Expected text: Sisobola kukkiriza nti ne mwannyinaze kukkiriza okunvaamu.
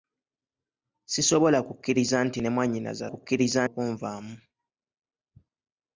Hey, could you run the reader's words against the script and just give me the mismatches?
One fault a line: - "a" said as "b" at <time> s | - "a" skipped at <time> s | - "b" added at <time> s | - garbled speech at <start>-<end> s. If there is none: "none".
none